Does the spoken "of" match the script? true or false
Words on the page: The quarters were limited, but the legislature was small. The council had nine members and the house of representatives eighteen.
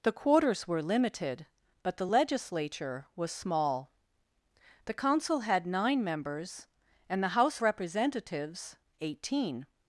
false